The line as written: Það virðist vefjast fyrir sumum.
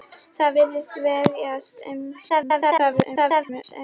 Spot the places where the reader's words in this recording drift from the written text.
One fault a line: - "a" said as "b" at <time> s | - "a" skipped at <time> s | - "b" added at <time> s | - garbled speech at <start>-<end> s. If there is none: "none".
- garbled speech at 2.3-3.6 s